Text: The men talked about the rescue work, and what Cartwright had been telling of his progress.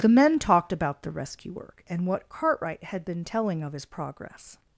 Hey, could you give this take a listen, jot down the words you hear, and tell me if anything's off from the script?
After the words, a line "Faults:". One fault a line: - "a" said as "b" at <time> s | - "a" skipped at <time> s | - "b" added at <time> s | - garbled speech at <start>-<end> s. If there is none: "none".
The men talked about the rescue work, and what Cartwright had been telling of his progress.
Faults:
none